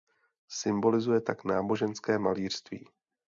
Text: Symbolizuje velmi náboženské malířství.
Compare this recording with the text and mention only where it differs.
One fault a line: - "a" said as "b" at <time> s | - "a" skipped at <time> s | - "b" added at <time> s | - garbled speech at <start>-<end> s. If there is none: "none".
- "velmi" said as "tak" at 1.2 s